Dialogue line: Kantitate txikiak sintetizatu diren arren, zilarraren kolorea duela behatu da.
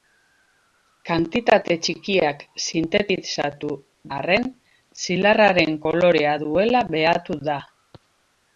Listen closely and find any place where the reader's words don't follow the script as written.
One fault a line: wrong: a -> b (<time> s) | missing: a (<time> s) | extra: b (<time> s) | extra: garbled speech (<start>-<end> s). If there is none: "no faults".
missing: diren (3.7 s)